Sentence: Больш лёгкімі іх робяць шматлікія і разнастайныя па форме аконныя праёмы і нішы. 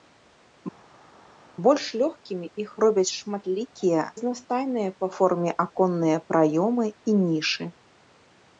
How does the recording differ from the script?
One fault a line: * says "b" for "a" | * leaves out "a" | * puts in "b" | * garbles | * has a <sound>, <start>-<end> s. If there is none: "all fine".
* leaves out "і"